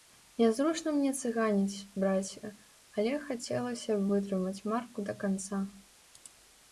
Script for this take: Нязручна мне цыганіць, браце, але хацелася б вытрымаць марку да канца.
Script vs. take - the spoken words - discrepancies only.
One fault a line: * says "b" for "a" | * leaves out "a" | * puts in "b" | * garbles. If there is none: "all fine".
all fine